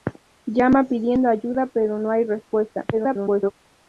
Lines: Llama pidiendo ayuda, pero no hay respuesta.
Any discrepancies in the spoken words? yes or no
yes